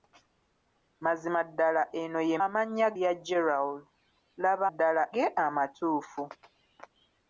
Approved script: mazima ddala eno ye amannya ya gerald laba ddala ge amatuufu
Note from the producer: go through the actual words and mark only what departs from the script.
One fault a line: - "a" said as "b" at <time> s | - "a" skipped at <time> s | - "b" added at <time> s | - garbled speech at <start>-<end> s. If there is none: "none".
none